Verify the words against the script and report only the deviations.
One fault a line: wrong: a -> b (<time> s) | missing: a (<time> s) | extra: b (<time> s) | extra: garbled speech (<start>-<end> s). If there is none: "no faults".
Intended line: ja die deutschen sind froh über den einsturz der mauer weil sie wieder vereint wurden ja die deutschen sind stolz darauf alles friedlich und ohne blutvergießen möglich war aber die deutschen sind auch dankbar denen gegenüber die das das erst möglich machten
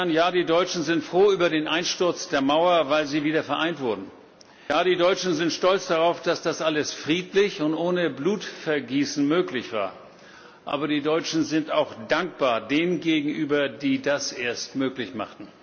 extra: dass das (6.2 s)
missing: das (14.3 s)